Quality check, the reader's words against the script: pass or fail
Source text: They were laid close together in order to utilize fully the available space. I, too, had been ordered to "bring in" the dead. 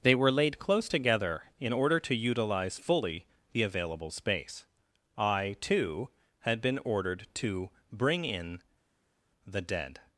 pass